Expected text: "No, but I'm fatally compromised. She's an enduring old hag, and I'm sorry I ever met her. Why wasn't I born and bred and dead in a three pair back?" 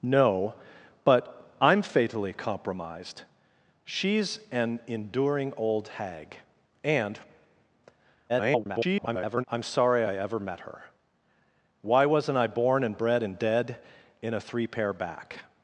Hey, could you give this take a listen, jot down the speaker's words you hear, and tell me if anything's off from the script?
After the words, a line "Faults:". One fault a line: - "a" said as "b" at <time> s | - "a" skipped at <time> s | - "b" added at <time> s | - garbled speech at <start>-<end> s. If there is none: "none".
"No, but I'm fatally compromised. She's an enduring old hag, and [garbled] I'm sorry I ever met her. Why wasn't I born and bred and dead in a three pair back?"
Faults:
- garbled speech at 8.3-9.4 s